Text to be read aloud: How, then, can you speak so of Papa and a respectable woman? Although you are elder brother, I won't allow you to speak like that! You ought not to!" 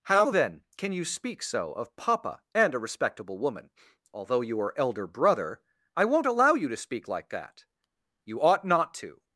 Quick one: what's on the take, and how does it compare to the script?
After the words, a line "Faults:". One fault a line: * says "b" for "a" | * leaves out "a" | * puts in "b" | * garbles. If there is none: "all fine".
How, then, can you speak so of Papa and a respectable woman? Although you are elder brother, I won't allow you to speak like that! You ought not to!"
Faults:
all fine